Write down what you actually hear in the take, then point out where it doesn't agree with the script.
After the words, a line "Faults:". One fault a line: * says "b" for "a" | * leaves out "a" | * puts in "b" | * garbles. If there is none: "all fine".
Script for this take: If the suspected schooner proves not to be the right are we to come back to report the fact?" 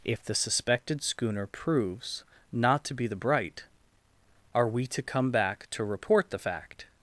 If the suspected schooner proves not to be the bright are we to come back to report the fact?"
Faults:
* says "bright" for "right"